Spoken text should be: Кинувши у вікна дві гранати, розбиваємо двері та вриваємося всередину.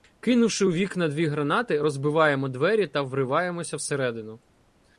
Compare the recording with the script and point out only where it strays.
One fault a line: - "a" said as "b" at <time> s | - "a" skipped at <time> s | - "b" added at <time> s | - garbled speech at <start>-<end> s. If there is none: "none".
none